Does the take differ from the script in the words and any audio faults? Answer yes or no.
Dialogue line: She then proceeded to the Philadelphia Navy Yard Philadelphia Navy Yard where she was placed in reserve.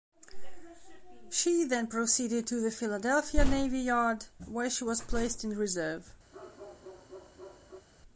yes